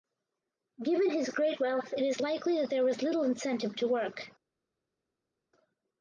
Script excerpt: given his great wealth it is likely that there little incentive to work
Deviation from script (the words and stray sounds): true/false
true